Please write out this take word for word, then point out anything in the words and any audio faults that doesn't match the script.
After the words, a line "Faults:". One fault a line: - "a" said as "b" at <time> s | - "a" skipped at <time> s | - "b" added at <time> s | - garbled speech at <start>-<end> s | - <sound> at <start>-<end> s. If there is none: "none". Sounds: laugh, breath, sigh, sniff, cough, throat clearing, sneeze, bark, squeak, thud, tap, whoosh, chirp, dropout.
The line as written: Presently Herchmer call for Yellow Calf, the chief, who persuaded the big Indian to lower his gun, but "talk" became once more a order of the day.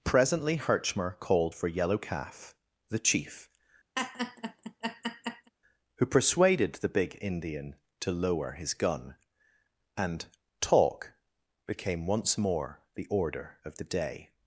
Presently Herchmer called for Yellow Calf, the chief, who persuaded the big Indian to lower his gun, and "talk" became once more the order of the day.
Faults:
- "call" said as "called" at 1.2 s
- laugh at 4.0-5.5 s
- "but" said as "and" at 10.0 s
- "a" said as "the" at 12.9 s